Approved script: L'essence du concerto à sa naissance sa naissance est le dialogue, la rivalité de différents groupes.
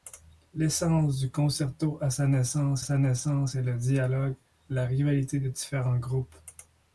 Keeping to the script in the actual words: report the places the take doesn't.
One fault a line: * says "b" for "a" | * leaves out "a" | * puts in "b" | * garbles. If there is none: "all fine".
all fine